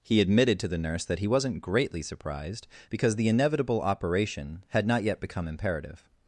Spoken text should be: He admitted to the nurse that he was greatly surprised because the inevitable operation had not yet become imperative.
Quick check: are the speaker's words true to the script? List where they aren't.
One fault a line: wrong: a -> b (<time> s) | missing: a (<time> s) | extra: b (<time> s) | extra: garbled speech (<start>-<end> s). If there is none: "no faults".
wrong: was -> wasn't (1.3 s)